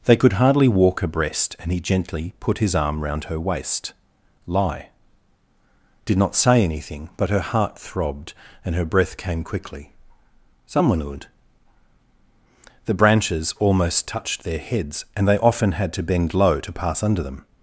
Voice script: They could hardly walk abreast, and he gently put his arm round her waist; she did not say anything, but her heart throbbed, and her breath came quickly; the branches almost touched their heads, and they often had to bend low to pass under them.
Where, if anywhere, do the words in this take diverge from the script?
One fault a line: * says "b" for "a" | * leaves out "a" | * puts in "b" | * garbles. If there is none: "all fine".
* says "lie" for "she"
* puts in "someone would"